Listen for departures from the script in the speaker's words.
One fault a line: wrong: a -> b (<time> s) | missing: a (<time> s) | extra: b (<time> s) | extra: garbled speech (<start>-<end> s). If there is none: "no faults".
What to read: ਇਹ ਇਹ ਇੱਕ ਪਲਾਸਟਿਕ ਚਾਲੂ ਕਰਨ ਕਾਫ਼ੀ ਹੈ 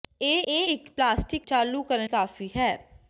no faults